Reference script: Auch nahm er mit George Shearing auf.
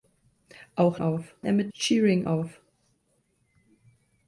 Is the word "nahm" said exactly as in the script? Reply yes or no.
no